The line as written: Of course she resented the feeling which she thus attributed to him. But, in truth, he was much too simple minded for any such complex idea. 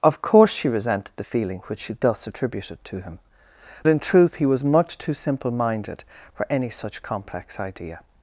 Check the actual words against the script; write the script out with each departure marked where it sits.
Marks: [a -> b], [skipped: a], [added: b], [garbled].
Of course she resented the feeling which she thus attributed to him. [skipped: But,] in truth, he was much too simple minded for any such complex idea.